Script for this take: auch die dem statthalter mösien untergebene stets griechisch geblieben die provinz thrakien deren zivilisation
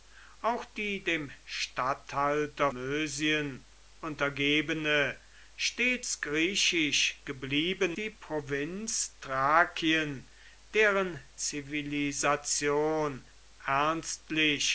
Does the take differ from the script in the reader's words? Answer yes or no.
no